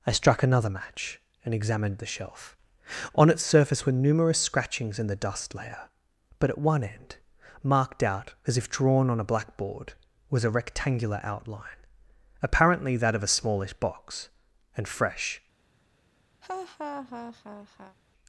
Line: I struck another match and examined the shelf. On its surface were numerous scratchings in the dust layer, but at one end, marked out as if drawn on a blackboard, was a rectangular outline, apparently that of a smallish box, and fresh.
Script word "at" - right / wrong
right